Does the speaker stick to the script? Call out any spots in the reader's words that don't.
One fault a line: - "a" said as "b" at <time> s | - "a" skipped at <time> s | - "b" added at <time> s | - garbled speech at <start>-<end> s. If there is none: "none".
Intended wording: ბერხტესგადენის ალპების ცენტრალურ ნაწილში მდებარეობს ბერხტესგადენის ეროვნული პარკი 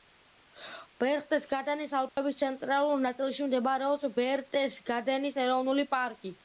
none